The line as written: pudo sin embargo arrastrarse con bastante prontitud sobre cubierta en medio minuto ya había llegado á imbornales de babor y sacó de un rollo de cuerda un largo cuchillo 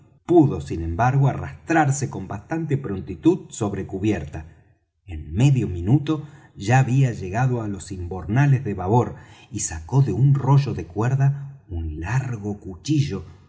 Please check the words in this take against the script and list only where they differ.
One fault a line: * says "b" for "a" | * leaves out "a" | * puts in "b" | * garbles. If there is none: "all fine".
* puts in "los"